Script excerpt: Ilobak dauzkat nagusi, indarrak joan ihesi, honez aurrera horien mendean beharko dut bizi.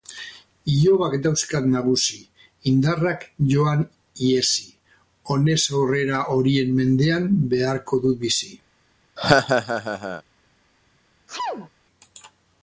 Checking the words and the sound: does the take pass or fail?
fail